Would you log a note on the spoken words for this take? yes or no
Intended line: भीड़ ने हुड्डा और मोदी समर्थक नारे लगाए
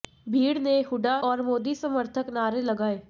no